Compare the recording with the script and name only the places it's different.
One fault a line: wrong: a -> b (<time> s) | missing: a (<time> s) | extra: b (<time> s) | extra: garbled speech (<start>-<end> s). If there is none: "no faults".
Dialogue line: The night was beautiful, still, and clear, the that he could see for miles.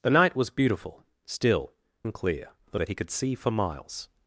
no faults